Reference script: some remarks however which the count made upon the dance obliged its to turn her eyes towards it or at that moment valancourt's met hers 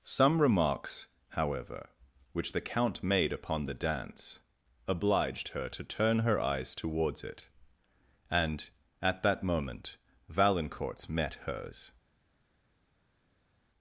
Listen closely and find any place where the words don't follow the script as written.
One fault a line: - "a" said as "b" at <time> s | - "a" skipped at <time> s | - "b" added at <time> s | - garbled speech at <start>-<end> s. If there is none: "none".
- "its" said as "her" at 5.5 s
- "or" said as "and" at 8.3 s